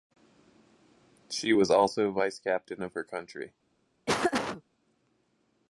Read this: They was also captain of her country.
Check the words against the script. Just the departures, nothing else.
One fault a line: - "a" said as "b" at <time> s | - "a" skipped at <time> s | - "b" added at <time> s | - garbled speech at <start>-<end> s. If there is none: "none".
- "They" said as "She" at 1.3 s
- "vice" added at 2.1 s